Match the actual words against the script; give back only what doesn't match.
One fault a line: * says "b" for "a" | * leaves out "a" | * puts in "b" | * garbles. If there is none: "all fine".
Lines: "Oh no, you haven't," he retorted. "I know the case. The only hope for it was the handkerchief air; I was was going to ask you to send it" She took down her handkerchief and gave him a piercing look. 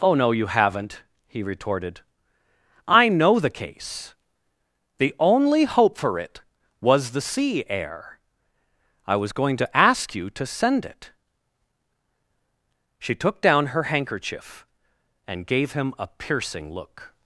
* says "sea" for "handkerchief"
* leaves out "was"